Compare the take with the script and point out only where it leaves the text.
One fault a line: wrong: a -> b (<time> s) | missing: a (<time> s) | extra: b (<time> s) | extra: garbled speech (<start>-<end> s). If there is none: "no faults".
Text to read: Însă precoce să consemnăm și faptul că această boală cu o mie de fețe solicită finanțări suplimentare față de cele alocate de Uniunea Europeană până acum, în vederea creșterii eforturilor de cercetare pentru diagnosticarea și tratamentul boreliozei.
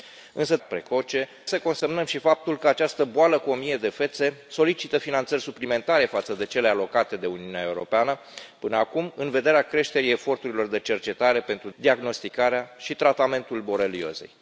no faults